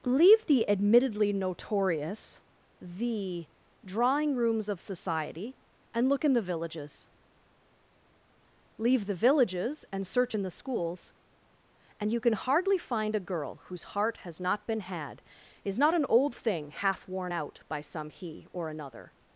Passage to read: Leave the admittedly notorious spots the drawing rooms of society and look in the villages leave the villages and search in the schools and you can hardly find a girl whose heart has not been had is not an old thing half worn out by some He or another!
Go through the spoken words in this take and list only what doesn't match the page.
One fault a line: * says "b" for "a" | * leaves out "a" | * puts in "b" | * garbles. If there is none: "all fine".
* leaves out "spots"